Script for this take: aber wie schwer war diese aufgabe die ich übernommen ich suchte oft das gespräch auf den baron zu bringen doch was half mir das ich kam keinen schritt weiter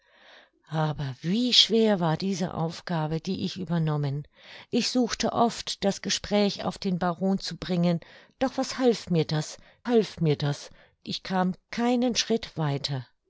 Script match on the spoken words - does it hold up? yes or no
no